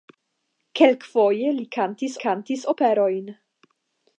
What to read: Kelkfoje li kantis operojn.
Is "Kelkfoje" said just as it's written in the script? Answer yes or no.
yes